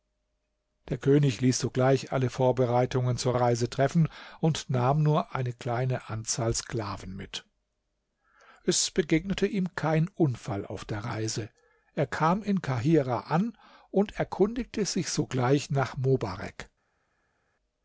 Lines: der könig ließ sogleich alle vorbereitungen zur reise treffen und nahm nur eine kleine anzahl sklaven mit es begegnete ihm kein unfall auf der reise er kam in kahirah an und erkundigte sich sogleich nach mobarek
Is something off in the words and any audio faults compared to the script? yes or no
no